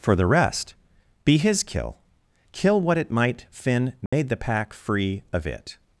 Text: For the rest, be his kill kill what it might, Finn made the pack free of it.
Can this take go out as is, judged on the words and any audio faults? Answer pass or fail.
fail